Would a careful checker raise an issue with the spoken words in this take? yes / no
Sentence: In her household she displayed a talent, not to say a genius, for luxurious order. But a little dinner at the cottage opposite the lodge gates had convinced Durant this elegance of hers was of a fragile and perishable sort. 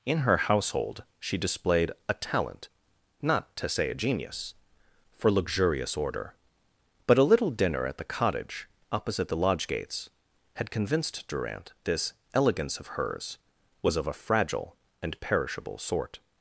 no